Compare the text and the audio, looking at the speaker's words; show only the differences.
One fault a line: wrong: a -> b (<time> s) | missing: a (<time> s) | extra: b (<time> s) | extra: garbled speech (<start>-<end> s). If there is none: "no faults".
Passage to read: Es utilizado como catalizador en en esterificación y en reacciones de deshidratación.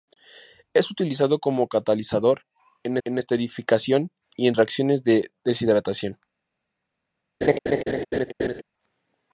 no faults